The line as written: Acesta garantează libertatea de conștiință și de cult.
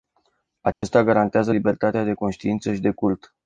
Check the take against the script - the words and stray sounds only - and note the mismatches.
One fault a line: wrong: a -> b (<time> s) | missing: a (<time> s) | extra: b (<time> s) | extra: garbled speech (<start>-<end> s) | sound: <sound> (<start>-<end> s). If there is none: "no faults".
sound: dropout (0.7-0.8 s)